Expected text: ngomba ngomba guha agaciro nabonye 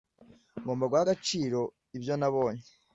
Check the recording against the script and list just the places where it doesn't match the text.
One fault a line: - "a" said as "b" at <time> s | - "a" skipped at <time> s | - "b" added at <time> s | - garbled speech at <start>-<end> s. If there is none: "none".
- "ngomba" skipped at 0.8 s
- "ibyo" added at 2.0 s